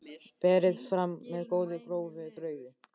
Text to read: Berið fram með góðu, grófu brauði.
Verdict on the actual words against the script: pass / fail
pass